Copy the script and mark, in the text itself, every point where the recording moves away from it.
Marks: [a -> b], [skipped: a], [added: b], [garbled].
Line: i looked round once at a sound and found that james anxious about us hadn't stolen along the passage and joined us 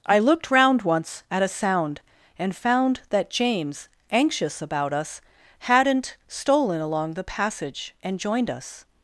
i looked round once at a sound and found that james anxious about us hadn't stolen along the passage and joined us